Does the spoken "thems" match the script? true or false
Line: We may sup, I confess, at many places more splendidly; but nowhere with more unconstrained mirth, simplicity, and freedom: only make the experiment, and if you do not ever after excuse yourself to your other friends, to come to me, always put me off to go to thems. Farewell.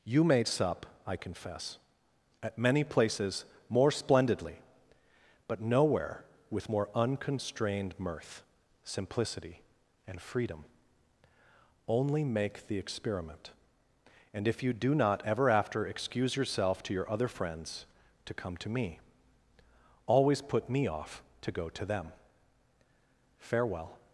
false